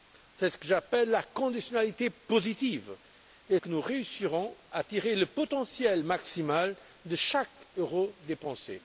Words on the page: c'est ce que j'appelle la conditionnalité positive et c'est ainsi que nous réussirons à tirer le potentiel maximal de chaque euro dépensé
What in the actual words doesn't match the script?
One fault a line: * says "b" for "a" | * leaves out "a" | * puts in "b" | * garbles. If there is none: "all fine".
* leaves out "c'est ainsi"